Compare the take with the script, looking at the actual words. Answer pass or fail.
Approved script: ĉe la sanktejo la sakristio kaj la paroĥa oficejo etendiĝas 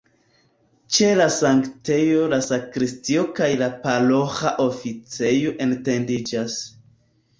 pass